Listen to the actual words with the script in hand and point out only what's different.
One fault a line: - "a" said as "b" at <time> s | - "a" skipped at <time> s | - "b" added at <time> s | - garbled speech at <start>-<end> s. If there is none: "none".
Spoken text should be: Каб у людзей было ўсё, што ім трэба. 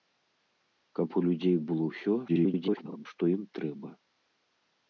- garbled speech at 2.3-3.1 s